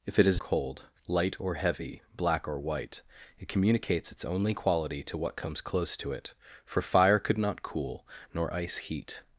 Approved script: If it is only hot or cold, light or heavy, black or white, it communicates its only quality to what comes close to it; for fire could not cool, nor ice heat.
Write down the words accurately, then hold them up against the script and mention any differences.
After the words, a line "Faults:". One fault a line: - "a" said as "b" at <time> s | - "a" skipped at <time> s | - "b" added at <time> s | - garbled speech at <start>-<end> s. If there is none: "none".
If it is cold, light or heavy, black or white, it communicates its only quality to what comes close to it; for fire could not cool, nor ice heat.
Faults:
- "only hot or" skipped at 0.4 s